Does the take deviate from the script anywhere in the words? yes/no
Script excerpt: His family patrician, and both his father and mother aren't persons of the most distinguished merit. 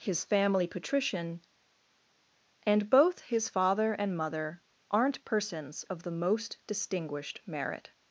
no